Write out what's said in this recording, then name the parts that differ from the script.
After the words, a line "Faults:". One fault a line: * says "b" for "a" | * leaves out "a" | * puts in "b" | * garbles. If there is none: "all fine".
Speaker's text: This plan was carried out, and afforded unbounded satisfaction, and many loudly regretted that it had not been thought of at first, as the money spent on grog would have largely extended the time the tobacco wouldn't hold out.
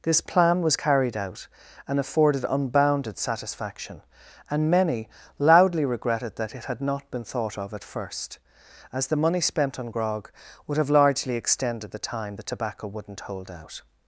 This plan was carried out, and afforded unbounded satisfaction, and many loudly regretted that it had not been thought of at first, as the money spent on grog would have largely extended the time the tobacco wouldn't hold out.
Faults:
all fine